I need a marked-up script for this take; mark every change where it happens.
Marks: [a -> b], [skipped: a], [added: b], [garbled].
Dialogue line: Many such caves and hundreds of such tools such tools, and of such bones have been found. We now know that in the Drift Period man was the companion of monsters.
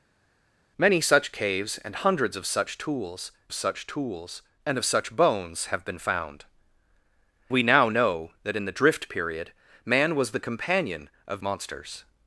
Many such caves and hundreds of such tools such tools, and of such bones have been found. We now know that in the Drift Period man was the companion of monsters.